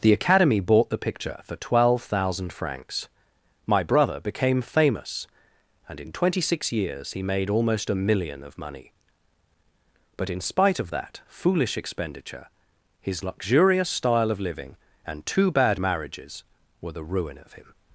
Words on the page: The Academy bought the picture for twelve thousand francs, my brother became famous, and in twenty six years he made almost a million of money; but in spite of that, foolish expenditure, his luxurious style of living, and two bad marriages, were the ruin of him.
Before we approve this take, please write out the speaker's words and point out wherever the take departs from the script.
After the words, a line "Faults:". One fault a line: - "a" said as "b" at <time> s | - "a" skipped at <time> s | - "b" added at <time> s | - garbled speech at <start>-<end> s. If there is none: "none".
The Academy bought the picture for twelve thousand francs, my brother became famous, and in twenty six years he made almost a million of money; but in spite of that, foolish expenditure, his luxurious style of living, and two bad marriages, were the ruin of him.
Faults:
none